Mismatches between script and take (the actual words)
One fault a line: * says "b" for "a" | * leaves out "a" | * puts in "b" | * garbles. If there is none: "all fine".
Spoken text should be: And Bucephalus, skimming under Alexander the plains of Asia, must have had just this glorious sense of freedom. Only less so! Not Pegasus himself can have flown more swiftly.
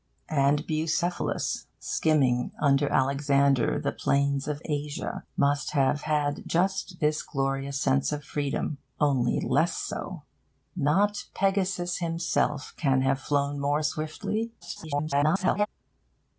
* garbles